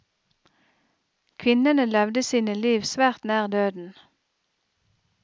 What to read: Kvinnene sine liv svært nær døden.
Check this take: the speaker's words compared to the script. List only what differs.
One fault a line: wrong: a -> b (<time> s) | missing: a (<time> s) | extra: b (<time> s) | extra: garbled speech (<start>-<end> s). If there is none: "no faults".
extra: levde (1.9 s)